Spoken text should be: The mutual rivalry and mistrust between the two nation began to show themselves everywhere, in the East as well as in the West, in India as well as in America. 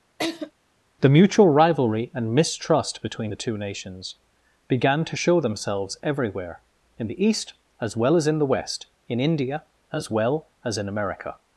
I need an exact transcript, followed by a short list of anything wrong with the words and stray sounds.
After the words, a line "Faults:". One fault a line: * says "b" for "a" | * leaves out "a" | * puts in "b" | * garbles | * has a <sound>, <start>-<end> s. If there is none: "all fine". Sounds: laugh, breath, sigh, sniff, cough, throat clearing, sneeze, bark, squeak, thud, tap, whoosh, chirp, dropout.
The mutual rivalry and mistrust between the two nations began to show themselves everywhere, in the East as well as in the West, in India as well as in America.
Faults:
* has a laugh, 0.2-0.5 s
* says "nations" for "nation"